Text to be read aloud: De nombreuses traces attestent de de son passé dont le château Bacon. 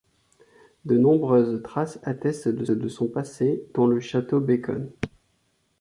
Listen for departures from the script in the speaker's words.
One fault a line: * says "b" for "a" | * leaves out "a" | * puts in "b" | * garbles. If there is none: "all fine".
all fine